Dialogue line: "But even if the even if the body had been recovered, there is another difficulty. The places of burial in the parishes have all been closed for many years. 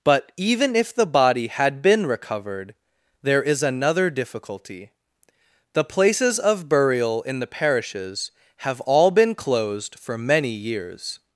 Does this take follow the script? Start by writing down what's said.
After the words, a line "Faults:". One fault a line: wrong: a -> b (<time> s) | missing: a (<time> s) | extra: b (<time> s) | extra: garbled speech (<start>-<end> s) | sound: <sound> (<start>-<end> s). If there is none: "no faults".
"But even if the body had been recovered, there is another difficulty. The places of burial in the parishes have all been closed for many years.
Faults:
missing: even if the (1.1 s)